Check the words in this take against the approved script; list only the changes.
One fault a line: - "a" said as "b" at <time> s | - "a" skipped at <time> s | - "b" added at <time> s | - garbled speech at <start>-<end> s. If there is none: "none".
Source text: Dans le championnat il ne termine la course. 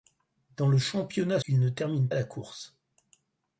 none